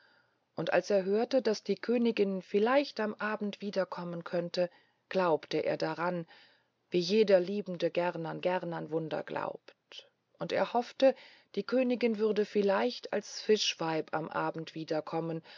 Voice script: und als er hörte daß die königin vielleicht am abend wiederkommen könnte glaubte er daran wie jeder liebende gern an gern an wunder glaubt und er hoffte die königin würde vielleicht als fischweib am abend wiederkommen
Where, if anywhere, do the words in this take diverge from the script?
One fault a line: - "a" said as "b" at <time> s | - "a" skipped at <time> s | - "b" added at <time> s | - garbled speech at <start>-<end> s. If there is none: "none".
none